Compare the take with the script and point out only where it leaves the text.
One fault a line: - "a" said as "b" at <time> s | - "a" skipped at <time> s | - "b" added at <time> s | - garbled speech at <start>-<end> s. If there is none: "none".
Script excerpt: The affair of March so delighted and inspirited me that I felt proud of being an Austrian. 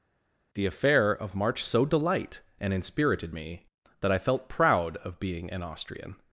- "delighted" said as "delight" at 1.8 s